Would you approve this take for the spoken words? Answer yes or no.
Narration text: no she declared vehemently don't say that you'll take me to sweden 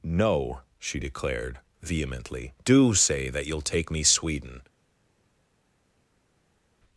no